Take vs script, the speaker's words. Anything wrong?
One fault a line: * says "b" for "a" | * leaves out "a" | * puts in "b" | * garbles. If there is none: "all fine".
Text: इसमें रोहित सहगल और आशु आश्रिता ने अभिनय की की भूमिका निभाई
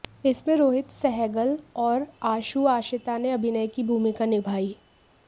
* leaves out "की"